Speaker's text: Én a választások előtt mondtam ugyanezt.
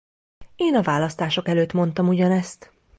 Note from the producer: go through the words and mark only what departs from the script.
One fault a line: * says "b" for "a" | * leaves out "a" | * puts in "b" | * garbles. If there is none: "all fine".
all fine